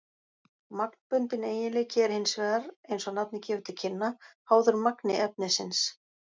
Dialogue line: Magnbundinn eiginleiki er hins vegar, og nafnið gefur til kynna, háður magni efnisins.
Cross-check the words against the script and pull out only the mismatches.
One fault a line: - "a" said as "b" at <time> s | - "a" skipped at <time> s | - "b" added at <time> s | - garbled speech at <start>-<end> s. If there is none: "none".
- "eins" added at 2.9 s